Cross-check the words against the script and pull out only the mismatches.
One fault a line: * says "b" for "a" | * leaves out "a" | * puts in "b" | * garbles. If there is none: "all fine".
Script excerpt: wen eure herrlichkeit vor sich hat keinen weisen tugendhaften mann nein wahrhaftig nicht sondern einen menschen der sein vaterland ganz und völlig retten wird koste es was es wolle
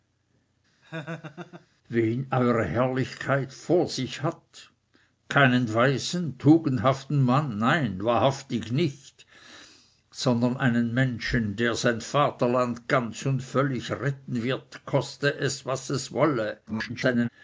* garbles